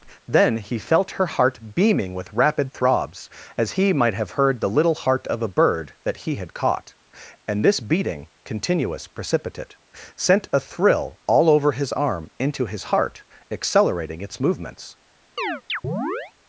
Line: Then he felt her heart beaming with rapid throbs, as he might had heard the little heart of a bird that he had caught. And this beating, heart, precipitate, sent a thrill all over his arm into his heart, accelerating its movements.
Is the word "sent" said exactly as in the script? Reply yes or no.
yes